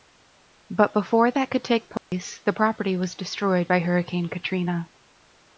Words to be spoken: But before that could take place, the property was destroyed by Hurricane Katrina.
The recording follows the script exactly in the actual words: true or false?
true